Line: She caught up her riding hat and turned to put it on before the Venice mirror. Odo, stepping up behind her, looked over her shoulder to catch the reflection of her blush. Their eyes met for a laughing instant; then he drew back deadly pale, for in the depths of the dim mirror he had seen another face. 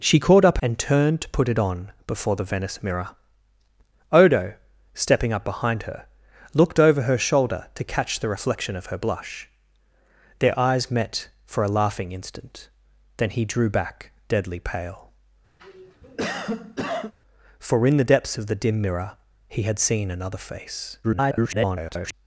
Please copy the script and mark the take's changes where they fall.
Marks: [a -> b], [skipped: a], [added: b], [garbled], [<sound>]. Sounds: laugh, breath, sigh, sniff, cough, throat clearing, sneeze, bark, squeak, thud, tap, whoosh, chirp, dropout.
She caught up [skipped: her riding hat] and turned to put it on before the Venice mirror. Odo, stepping up behind her, looked over her shoulder to catch the reflection of her blush. Their eyes met for a laughing instant; then he drew back deadly pale, [cough] for in the depths of the dim mirror he had seen another face. [garbled]